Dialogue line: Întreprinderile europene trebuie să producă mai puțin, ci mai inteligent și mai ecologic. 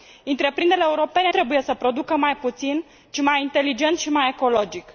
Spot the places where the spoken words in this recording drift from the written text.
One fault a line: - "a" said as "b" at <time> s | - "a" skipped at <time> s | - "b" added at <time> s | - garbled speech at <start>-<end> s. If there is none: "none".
none